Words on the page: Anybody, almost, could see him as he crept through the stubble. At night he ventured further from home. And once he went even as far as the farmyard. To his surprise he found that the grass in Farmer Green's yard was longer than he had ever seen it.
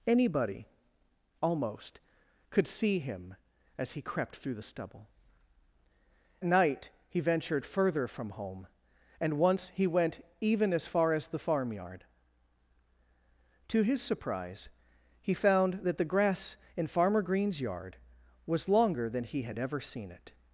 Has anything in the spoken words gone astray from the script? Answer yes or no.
yes